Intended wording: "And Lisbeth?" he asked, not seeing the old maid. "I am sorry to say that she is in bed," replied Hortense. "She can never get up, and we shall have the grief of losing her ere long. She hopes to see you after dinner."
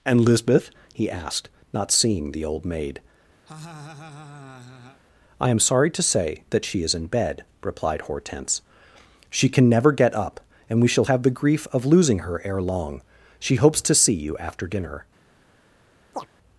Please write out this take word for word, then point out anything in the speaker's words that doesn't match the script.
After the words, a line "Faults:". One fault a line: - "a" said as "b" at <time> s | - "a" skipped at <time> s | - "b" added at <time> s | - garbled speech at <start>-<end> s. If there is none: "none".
"And Lisbeth?" he asked, not seeing the old maid. "I am sorry to say that she is in bed," replied Hortense. "She can never get up, and we shall have the grief of losing her ere long. She hopes to see you after dinner."
Faults:
none